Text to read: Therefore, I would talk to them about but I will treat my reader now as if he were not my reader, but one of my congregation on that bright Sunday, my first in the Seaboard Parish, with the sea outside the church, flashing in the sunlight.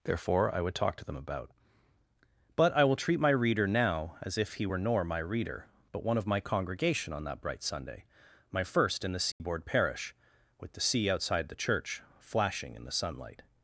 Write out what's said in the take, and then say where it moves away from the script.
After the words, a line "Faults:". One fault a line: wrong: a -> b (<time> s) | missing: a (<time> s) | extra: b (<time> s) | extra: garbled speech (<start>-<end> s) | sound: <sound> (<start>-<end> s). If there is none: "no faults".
Therefore, I would talk to them about but I will treat my reader now as if he were nor my reader, but one of my congregation on that bright Sunday, my first in the Seaboard Parish, with the sea outside the church, flashing in the sunlight.
Faults:
wrong: not -> nor (4.8 s)
sound: dropout (9.3-9.4 s)